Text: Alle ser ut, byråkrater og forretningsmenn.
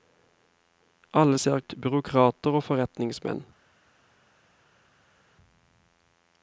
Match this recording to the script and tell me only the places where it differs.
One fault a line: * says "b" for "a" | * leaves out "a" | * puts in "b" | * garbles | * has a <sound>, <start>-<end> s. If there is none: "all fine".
all fine